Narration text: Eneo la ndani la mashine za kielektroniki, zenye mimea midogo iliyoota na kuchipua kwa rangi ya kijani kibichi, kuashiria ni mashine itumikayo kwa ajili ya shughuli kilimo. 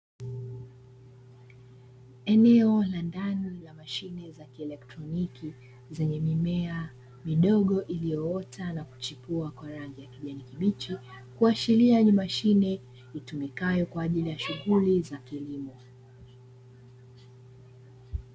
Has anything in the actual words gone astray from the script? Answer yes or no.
yes